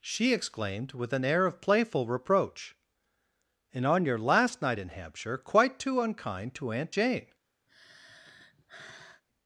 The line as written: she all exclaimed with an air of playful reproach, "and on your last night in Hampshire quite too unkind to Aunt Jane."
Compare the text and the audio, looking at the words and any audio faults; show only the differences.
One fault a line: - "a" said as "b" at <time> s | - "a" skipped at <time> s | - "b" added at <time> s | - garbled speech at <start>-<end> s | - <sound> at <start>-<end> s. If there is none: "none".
- "all" skipped at 0.3 s
- sigh at 7.7-9.2 s